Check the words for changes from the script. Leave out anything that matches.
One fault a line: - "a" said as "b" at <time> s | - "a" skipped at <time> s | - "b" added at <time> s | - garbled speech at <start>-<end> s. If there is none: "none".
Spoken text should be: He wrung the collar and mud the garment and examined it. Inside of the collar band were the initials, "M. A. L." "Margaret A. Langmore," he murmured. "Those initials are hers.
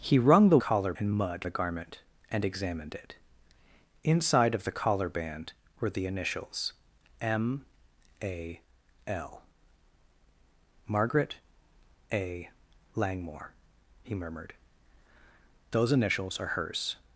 none